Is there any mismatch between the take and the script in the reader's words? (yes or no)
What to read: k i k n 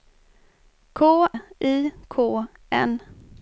no